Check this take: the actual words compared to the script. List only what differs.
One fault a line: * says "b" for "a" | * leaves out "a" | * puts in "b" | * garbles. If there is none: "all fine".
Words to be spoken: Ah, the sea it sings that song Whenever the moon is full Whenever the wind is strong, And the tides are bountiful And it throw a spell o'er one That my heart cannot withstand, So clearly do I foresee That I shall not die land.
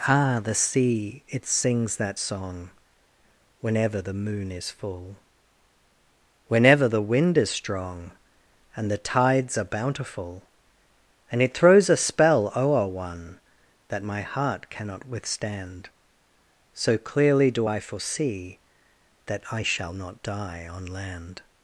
* says "throws" for "throw"
* puts in "on"